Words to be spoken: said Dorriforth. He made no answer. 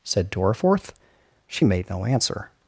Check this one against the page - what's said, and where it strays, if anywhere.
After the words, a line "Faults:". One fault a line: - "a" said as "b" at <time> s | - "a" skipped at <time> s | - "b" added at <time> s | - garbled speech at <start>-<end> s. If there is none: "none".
said Dorriforth. She made no answer.
Faults:
- "He" said as "She" at 1.5 s